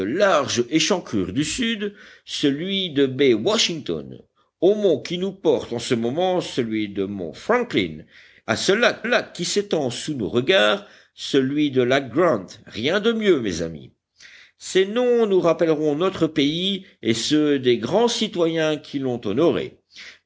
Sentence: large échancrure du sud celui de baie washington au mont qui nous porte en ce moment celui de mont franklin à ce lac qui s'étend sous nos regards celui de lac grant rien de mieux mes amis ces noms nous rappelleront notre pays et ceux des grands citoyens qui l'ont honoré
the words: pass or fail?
fail